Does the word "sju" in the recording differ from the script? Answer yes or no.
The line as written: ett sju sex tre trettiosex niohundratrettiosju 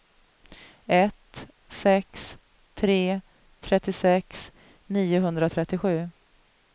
yes